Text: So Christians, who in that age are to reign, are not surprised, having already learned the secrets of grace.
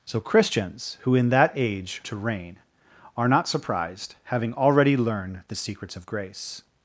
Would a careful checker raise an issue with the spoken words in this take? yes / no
yes